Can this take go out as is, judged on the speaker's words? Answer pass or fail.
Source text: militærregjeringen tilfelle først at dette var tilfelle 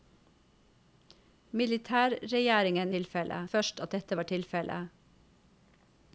pass